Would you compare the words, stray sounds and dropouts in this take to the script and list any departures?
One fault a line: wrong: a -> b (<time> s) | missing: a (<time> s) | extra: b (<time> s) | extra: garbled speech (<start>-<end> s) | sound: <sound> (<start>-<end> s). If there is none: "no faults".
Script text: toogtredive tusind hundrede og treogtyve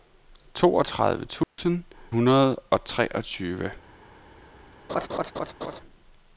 sound: dropout (1.4-1.6 s)
sound: laugh (4.9-5.8 s)